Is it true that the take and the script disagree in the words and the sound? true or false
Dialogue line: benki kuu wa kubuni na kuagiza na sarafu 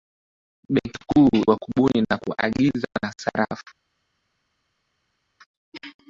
false